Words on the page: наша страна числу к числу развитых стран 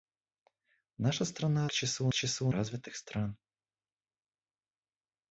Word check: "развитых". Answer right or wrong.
right